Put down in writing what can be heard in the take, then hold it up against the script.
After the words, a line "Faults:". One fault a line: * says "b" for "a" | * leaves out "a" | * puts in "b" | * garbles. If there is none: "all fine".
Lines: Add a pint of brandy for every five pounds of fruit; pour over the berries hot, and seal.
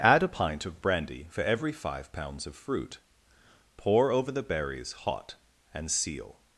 Add a pint of brandy for every five pounds of fruit; pour over the berries hot, and seal.
Faults:
all fine